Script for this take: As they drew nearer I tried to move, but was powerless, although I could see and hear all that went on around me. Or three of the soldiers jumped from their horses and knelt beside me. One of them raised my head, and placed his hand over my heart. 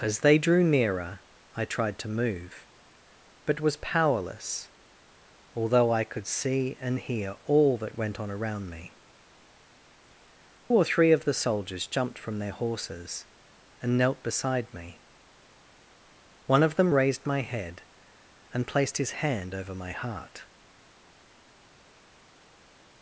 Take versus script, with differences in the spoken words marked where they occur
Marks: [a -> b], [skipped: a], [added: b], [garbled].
As they drew nearer I tried to move, but was powerless, although I could see and hear all that went on around me. Or three of the soldiers jumped from their horses and knelt beside me. One of them raised my head, and placed his hand over my heart.